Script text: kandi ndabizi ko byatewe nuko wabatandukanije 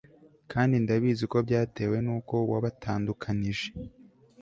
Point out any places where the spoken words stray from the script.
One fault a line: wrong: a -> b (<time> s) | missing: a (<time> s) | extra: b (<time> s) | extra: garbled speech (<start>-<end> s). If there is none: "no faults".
no faults